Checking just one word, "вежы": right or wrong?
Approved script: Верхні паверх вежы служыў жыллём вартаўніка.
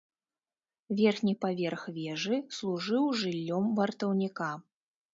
right